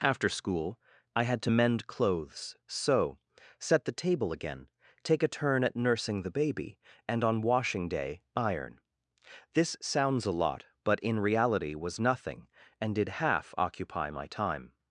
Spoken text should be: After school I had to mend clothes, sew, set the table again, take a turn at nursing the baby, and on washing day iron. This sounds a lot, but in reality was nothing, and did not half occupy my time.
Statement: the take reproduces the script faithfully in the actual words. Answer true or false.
false